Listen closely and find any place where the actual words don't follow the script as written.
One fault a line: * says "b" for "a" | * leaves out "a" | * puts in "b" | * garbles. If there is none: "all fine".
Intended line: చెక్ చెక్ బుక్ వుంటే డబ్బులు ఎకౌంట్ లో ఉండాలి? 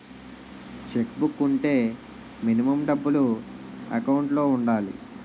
* leaves out "చెక్"
* puts in "మినిమం"